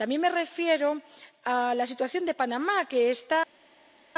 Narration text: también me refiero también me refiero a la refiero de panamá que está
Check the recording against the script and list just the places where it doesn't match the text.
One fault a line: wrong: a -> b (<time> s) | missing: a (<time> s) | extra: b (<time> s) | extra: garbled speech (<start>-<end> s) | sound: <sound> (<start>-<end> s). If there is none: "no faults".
missing: también me refiero (1.0 s)
wrong: refiero -> situación (1.9 s)